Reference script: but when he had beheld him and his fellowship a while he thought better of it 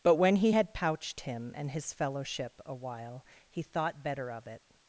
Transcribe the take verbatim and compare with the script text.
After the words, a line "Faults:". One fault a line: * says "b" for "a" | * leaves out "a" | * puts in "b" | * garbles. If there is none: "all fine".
but when he had pouched him and his fellowship a while he thought better of it
Faults:
* says "pouched" for "beheld"